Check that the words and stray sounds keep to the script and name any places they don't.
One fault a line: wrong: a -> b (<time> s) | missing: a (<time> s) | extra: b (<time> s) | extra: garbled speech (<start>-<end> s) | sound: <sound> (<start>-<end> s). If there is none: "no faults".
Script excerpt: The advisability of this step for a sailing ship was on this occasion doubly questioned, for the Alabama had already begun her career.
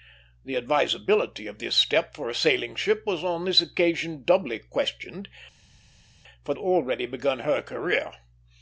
missing: the Alabama had (6.5 s)